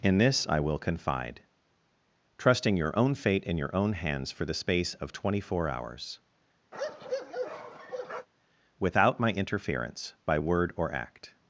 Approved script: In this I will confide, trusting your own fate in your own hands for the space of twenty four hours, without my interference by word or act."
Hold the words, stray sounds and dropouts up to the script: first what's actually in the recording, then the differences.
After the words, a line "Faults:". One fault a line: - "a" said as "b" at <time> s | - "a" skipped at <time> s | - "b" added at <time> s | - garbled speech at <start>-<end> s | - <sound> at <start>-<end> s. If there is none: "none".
In this I will confide, trusting your own fate in your own hands for the space of twenty four hours, without my interference by word or act."
Faults:
- bark at 6.7-8.3 s